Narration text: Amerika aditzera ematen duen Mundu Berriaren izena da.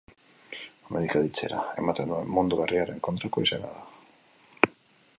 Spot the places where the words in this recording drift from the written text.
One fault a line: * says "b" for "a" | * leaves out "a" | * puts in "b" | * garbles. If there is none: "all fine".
* puts in "kontrako"